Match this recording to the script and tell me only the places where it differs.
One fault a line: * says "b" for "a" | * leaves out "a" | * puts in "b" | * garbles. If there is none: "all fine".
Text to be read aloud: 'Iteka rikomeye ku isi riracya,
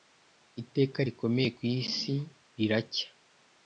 all fine